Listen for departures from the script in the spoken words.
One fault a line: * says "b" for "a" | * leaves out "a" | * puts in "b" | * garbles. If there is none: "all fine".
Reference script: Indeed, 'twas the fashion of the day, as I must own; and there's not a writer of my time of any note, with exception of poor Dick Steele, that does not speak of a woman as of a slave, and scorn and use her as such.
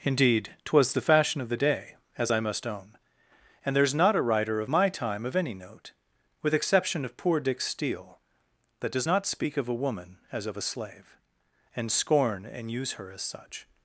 all fine